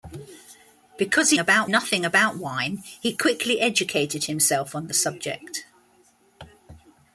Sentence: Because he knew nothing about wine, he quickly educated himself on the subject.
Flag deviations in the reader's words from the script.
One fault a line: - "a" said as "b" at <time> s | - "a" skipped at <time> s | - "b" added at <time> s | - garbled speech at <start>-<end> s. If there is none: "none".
- "knew" said as "about" at 1.4 s